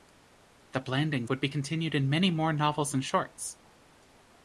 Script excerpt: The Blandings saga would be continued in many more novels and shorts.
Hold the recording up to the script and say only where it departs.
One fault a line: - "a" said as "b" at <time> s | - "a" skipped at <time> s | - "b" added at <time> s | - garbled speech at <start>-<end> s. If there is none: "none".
- "saga" skipped at 1.3 s